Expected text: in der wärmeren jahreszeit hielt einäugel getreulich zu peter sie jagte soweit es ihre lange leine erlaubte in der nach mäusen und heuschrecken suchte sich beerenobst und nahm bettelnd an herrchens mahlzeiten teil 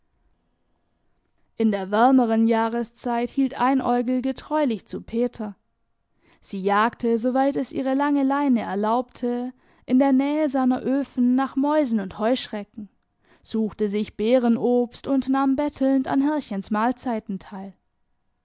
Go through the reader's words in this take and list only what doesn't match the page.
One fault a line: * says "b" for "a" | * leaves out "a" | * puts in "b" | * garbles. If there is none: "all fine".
* puts in "nähe seiner öfen"